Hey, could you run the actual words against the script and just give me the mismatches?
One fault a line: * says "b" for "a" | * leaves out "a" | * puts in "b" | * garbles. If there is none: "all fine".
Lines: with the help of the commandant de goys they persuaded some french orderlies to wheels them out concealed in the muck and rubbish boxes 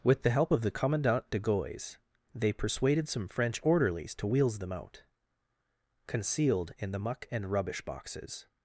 all fine